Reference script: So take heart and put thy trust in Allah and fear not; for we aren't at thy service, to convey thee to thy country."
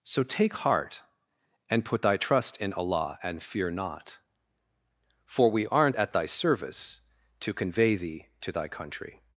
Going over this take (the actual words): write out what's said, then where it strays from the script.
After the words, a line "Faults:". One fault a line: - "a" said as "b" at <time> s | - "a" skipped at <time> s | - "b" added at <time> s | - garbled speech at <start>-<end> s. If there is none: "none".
So take heart and put thy trust in Allah and fear not; for we aren't at thy service, to convey thee to thy country."
Faults:
none